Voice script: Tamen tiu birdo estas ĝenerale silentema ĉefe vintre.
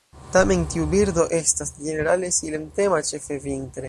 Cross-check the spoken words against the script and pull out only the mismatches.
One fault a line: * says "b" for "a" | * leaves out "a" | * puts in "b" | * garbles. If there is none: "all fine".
all fine